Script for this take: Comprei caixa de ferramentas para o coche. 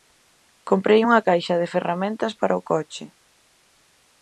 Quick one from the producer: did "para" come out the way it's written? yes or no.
yes